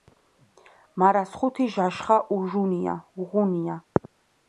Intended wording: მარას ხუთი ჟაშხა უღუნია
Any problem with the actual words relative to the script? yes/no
no